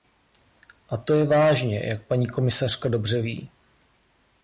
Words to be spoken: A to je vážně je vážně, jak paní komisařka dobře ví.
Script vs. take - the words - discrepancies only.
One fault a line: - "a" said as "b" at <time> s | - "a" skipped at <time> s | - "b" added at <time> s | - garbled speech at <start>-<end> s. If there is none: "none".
- "je vážně" skipped at 1.8 s